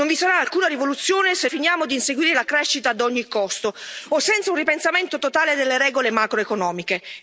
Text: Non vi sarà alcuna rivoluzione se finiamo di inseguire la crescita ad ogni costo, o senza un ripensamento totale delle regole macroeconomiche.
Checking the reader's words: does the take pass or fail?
pass